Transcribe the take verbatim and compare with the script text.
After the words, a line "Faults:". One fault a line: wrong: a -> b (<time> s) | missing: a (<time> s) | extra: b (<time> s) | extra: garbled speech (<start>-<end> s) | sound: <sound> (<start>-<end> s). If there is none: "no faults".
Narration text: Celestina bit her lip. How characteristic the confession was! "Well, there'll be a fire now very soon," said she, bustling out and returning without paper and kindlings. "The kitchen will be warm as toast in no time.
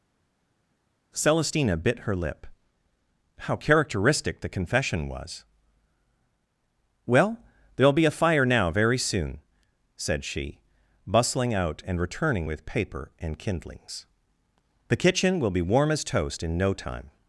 Celestina bit her lip. How characteristic the confession was! "Well, there'll be a fire now very soon," said she, bustling out and returning with paper and kindlings. "The kitchen will be warm as toast in no time.
Faults:
wrong: without -> with (12.5 s)